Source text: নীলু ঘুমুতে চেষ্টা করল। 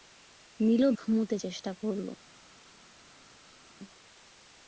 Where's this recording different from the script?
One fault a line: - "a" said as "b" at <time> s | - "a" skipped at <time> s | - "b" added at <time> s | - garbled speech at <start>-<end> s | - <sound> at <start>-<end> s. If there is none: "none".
none